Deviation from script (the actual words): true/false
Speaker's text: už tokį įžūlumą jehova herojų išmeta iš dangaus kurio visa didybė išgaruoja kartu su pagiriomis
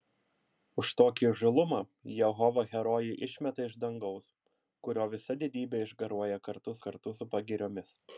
true